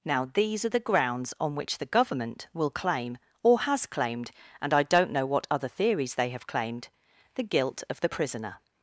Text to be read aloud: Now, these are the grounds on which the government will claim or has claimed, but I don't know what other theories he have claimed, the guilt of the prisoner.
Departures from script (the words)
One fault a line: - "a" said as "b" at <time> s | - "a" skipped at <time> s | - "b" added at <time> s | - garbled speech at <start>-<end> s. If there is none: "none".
- "but" said as "and" at 4.6 s
- "he" said as "they" at 6.2 s